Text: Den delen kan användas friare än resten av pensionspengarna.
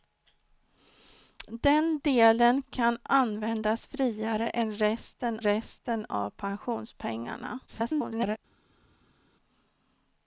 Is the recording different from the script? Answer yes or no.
yes